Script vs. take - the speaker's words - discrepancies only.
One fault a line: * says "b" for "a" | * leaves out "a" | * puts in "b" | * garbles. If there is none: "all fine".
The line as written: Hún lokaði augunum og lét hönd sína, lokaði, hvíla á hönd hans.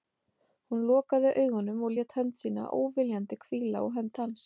* says "óviljandi" for "lokaði"